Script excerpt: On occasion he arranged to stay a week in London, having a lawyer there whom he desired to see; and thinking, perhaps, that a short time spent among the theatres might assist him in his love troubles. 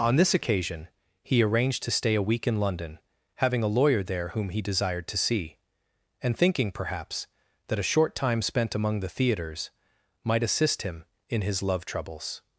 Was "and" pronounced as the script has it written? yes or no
yes